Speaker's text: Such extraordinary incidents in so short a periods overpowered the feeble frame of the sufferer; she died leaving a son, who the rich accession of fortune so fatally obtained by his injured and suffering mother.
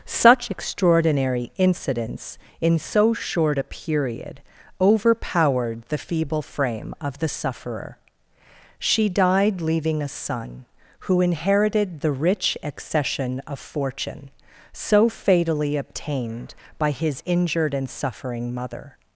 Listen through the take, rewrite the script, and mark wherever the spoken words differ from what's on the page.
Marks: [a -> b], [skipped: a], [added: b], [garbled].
Such extraordinary incidents in so short a [periods -> period] overpowered the feeble frame of the sufferer; she died leaving a son, who [added: inherited] the rich accession of fortune so fatally obtained by his injured and suffering mother.